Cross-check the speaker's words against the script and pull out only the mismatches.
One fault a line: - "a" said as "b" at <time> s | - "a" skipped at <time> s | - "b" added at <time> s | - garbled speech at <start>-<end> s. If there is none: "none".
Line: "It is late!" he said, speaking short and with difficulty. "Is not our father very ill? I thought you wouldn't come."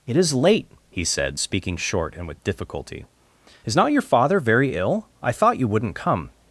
- "our" said as "your" at 3.9 s